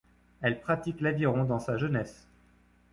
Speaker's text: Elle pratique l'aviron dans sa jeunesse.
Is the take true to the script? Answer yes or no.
yes